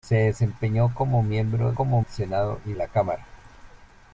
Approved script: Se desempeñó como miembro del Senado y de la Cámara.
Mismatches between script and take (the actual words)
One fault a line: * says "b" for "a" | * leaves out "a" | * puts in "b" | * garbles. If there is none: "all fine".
* says "como" for "del"
* leaves out "de"